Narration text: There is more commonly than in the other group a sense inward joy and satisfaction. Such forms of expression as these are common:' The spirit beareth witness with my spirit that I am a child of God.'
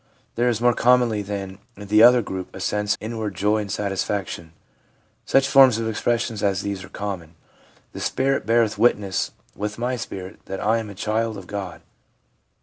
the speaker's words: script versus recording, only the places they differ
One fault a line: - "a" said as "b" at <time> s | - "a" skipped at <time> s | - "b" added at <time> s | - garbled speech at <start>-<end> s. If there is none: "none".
none